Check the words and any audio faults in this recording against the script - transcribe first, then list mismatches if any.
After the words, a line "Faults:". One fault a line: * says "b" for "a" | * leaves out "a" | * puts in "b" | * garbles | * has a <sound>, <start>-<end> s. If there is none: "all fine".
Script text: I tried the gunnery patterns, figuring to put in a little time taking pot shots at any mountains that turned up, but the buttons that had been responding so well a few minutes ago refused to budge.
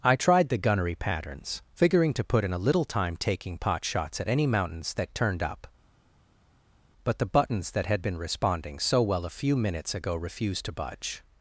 I tried the gunnery patterns, figuring to put in a little time taking pot shots at any mountains that turned up, but the buttons that had been responding so well a few minutes ago refused to budge.
Faults:
all fine